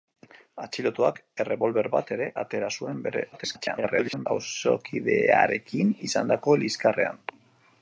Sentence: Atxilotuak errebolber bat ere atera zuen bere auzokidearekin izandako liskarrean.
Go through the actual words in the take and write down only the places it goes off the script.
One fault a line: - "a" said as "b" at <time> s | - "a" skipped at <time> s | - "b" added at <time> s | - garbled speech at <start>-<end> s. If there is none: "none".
- garbled speech at 3.3-4.3 s